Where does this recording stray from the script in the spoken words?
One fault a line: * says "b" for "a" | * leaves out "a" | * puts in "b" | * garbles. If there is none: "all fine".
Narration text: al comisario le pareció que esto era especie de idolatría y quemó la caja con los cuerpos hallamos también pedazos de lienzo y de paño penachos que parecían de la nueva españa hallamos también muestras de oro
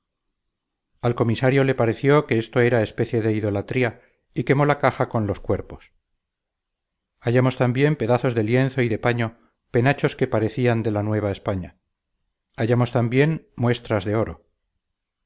all fine